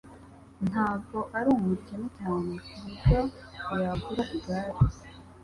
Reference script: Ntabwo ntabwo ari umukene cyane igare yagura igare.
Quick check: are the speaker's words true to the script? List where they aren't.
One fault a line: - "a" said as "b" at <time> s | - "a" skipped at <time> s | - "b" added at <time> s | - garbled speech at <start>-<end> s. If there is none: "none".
- "ntabwo" skipped at 1.2 s
- "igare" said as "kuburyo" at 2.6 s